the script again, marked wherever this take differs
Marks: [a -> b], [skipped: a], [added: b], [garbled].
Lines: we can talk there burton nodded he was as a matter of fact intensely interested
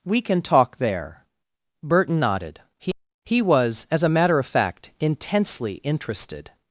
we can talk there burton nodded he [added: he] was as a matter of fact intensely interested